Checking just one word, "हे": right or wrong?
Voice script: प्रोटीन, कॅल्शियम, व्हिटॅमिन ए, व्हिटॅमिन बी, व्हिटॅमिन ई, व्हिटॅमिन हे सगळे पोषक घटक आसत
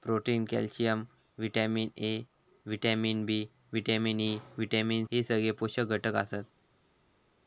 right